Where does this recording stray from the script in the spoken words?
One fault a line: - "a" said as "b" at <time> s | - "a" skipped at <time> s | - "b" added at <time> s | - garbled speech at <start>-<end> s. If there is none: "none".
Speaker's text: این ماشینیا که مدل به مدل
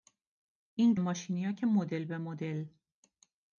none